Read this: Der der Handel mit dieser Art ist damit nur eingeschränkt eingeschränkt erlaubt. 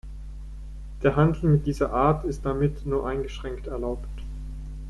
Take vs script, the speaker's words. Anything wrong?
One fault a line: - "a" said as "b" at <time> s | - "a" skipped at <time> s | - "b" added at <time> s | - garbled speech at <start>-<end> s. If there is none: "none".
- "der" skipped at 1.1 s
- "eingeschränkt" skipped at 3.7 s